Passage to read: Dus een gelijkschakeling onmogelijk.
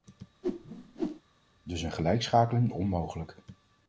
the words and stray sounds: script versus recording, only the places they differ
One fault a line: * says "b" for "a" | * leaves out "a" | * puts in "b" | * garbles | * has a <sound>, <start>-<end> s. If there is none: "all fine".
* has a whoosh, 0.4-1.2 s